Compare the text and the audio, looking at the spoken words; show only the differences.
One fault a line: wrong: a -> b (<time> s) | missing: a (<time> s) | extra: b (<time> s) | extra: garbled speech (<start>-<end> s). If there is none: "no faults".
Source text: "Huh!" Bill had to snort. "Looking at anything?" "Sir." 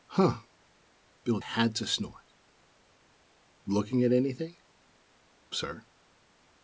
no faults